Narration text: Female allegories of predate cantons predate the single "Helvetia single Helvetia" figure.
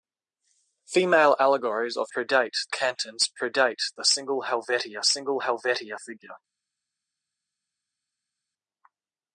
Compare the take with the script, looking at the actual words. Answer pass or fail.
pass